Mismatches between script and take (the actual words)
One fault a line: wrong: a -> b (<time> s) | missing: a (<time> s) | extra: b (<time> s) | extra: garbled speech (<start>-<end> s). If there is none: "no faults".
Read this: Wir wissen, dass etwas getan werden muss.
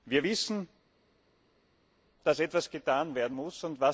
no faults